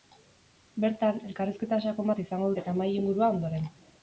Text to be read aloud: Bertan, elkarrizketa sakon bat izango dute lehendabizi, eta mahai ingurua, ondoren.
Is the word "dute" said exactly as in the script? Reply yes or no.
no